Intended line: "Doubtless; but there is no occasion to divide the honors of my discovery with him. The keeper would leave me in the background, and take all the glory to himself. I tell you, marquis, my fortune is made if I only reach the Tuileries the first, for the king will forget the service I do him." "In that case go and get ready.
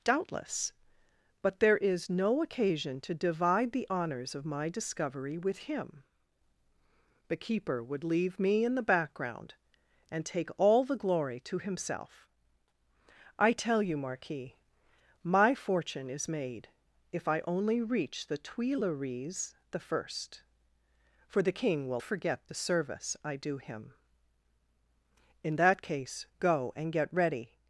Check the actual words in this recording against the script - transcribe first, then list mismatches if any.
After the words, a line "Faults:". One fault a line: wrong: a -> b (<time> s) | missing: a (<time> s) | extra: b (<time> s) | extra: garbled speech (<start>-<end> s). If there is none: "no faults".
"Doubtless; but there is no occasion to divide the honors of my discovery with him. The keeper would leave me in the background, and take all the glory to himself. I tell you, marquis, my fortune is made if I only reach the Tuileries the first, for the king will forget the service I do him." "In that case go and get ready.
Faults:
no faults